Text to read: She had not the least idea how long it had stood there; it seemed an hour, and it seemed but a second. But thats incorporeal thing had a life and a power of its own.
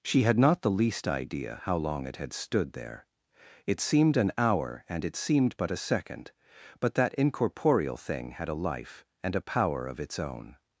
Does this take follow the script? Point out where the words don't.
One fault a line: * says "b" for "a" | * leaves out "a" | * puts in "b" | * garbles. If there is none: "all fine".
* says "that" for "thats"